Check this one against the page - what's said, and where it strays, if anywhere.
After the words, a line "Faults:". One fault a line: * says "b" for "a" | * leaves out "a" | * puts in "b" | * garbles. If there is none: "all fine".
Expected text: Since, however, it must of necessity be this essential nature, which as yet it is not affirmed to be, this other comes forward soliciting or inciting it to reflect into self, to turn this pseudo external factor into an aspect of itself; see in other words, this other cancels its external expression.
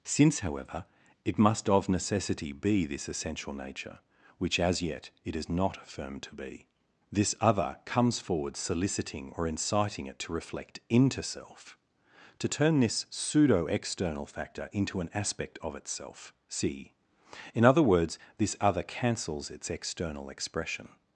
Since, however, it must of necessity be this essential nature, which as yet it is not affirmed to be, this other comes forward soliciting or inciting it to reflect into self, to turn this pseudo external factor into an aspect of itself; see in other words, this other cancels its external expression.
Faults:
all fine